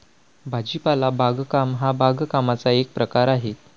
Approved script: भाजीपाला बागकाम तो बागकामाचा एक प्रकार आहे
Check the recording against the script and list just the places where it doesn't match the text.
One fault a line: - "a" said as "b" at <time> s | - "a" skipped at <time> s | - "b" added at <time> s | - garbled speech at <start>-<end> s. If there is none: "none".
- "तो" said as "हा" at 1.8 s